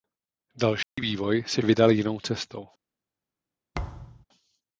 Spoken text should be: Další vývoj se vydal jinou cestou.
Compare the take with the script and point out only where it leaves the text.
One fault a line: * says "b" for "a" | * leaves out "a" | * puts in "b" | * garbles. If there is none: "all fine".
all fine